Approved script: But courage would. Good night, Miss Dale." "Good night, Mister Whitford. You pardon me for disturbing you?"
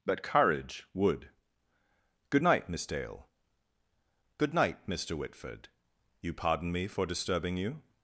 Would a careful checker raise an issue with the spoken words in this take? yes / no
no